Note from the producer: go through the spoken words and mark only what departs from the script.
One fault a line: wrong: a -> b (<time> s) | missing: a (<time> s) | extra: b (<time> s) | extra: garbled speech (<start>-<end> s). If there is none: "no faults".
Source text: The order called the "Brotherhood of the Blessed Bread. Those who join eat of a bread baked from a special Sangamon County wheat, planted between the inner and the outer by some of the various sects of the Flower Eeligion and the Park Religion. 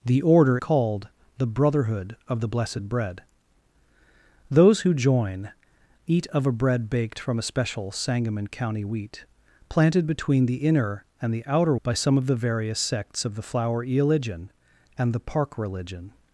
no faults